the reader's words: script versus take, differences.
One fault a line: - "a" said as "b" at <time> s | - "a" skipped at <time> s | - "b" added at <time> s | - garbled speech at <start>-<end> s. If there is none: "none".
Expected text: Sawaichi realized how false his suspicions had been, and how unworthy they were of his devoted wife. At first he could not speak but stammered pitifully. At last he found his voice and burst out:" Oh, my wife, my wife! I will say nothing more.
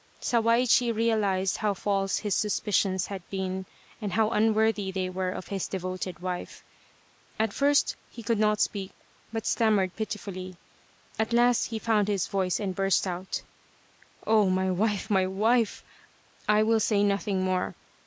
none